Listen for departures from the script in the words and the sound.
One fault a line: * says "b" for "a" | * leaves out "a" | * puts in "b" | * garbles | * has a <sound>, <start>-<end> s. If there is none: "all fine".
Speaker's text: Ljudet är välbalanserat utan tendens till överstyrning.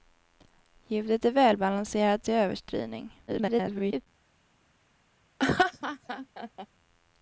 * leaves out "utan tendens"
* garbles
* has a laugh, 5.4-6.7 s